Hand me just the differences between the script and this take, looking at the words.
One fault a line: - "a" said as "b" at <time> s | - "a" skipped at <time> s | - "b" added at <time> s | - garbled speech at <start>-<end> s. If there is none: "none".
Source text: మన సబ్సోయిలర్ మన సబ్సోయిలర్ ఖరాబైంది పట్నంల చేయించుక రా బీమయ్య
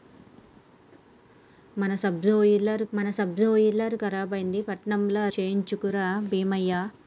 none